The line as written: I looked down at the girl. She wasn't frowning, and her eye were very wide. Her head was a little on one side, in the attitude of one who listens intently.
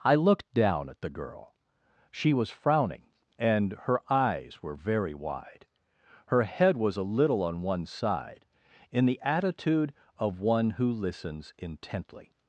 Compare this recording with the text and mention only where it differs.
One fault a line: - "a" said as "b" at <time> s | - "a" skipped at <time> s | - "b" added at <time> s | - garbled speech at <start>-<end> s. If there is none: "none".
- "wasn't" said as "was" at 2.3 s
- "eye" said as "eyes" at 4.1 s